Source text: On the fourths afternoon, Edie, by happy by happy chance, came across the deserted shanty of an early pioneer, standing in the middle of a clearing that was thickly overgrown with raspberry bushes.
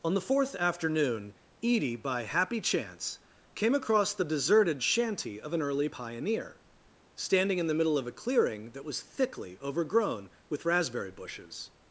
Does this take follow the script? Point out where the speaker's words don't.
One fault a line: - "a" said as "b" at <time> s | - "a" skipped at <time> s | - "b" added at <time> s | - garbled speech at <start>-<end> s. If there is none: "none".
- "fourths" said as "fourth" at 0.2 s
- "by happy" skipped at 2.6 s